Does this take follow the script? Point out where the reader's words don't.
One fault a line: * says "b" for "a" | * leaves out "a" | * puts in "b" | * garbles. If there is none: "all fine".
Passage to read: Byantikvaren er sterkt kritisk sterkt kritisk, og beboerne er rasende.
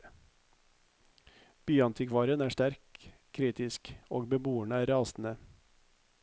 * leaves out "sterkt kritisk"